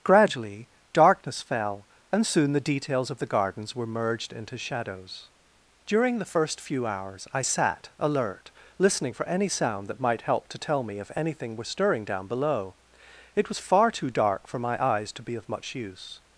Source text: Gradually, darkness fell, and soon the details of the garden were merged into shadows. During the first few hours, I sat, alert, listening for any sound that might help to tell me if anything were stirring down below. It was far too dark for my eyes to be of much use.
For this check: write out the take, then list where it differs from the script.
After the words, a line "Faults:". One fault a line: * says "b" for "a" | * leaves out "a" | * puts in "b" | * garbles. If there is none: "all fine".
Gradually, darkness fell, and soon the details of the gardens were merged into shadows. During the first few hours, I sat, alert, listening for any sound that might help to tell me if anything were stirring down below. It was far too dark for my eyes to be of much use.
Faults:
* says "gardens" for "garden"